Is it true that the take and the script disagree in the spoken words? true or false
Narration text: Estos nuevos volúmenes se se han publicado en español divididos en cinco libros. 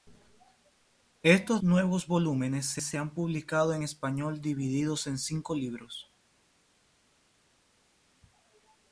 false